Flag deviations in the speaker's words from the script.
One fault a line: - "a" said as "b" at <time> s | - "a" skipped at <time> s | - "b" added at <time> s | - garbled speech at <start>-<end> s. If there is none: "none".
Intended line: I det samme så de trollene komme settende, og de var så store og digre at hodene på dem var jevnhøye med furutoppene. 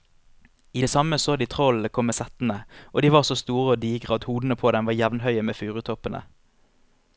none